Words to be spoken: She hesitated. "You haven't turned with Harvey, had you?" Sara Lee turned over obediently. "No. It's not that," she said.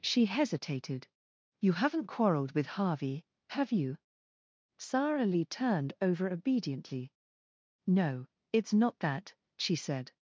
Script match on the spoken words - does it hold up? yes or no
no